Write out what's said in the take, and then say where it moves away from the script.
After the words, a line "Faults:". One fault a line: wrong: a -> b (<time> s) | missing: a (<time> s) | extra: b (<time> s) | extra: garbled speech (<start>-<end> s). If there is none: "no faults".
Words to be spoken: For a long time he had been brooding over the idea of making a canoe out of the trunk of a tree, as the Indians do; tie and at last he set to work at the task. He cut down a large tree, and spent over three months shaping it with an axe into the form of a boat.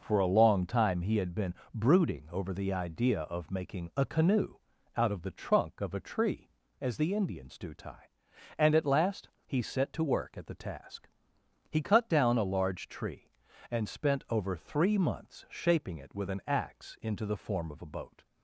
For a long time he had been brooding over the idea of making a canoe out of the trunk of a tree, as the Indians do; tie and at last he set to work at the task. He cut down a large tree, and spent over three months shaping it with an axe into the form of a boat.
Faults:
no faults